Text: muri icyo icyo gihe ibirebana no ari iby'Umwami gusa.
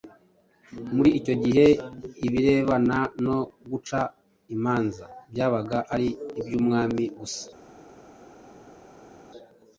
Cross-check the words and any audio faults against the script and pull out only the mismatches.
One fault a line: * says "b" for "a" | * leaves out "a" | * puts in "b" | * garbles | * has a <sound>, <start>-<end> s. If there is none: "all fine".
* leaves out "icyo"
* puts in "guca imanza byabaga"